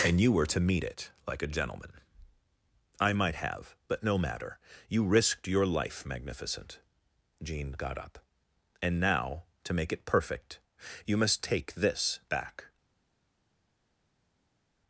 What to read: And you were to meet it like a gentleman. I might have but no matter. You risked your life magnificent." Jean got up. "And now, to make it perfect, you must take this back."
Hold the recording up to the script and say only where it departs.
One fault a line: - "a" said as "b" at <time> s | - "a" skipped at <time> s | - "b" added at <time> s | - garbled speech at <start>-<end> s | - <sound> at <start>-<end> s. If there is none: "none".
none